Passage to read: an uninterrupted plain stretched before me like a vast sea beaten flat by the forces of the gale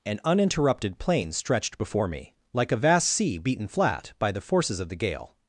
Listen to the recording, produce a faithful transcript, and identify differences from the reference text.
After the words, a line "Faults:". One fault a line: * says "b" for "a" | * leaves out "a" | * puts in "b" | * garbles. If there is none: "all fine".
an uninterrupted plain stretched before me like a vast sea beaten flat by the forces of the gale
Faults:
all fine